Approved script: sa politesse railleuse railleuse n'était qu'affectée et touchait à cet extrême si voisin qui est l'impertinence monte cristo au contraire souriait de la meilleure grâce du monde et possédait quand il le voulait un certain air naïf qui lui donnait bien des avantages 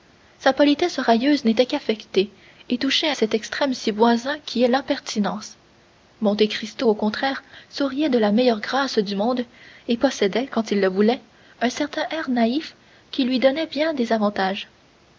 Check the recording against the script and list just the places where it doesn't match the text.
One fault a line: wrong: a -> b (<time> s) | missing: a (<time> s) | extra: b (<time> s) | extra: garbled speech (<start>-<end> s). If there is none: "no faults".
missing: railleuse (1.4 s)